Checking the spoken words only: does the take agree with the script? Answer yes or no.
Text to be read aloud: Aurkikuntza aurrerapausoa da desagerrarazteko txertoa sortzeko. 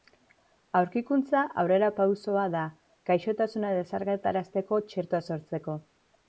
no